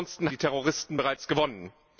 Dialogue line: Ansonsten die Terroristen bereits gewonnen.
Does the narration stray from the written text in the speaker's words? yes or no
no